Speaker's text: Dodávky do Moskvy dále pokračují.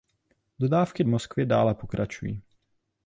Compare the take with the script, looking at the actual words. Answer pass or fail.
fail